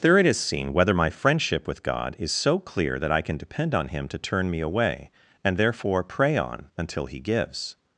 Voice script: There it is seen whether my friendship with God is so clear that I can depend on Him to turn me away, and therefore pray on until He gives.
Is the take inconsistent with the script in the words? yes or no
no